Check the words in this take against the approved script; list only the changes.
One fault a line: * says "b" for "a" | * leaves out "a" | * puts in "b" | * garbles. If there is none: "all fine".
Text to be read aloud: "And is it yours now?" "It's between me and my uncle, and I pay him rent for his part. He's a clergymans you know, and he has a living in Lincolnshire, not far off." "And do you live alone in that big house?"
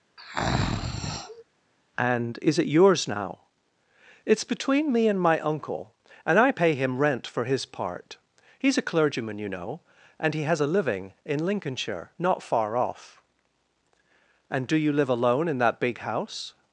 * says "clergyman" for "clergymans"